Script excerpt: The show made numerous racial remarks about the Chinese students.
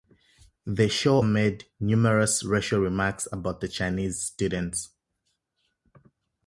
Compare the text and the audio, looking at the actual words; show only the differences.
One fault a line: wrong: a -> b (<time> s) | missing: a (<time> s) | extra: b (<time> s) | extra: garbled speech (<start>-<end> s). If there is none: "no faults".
no faults